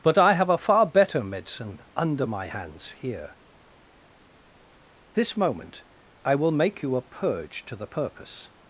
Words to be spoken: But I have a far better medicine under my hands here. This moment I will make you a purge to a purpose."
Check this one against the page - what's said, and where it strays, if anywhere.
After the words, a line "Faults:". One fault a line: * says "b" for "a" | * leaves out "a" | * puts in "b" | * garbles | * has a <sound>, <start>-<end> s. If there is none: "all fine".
But I have a far better medicine under my hands here. This moment I will make you a purge to the purpose."
Faults:
* says "the" for "a"